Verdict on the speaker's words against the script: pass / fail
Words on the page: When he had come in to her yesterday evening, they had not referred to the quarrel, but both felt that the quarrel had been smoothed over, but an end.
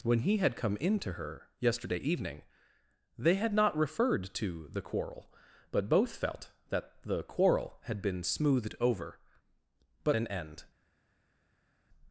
pass